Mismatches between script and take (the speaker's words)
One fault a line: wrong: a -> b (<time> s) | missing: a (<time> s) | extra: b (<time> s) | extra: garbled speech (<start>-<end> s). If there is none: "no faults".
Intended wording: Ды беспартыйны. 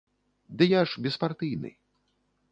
extra: я ж (0.7 s)